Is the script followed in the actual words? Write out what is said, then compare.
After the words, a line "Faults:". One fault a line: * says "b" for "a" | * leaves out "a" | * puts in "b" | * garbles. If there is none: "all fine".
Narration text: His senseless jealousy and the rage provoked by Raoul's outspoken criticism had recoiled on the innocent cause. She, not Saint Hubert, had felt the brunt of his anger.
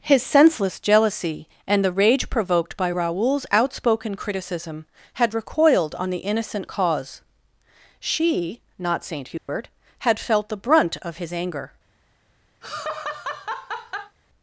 His senseless jealousy and the rage provoked by Raoul's outspoken criticism had recoiled on the innocent cause. She, not Saint Hubert, had felt the brunt of his anger.
Faults:
all fine